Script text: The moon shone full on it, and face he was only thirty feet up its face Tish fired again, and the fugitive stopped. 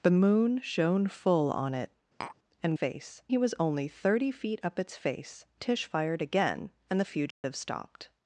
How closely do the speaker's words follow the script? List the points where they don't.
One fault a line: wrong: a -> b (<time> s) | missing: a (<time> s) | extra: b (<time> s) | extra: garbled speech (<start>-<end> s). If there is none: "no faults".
no faults